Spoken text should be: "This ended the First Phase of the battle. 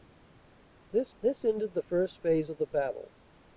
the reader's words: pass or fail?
fail